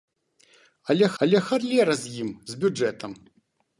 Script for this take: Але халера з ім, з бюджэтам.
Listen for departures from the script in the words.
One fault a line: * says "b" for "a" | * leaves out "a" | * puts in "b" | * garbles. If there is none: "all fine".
* puts in "але"